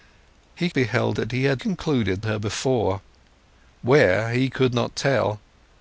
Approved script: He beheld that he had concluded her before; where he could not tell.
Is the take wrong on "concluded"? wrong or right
right